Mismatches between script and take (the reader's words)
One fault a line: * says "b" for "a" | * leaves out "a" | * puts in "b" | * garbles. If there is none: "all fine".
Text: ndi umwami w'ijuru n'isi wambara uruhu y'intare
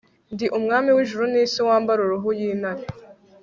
all fine